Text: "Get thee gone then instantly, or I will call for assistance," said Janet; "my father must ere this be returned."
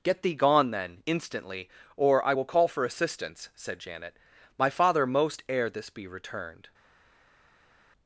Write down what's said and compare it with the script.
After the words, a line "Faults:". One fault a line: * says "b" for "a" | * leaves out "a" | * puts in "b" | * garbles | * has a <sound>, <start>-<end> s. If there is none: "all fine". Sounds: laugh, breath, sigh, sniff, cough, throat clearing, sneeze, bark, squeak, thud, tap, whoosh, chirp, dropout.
"Get thee gone then instantly, or I will call for assistance," said Janet; "my father most ere this be returned."
Faults:
* says "most" for "must"